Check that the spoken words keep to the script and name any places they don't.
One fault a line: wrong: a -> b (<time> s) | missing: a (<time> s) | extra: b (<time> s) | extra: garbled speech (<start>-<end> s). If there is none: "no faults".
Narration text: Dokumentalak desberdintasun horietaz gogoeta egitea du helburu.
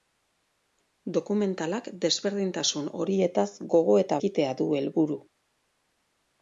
no faults